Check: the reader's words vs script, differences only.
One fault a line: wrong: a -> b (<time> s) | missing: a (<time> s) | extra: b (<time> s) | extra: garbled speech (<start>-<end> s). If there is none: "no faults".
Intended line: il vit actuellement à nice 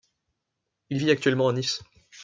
no faults